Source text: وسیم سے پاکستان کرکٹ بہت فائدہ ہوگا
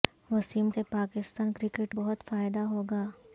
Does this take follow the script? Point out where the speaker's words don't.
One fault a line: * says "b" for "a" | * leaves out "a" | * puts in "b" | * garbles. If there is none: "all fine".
all fine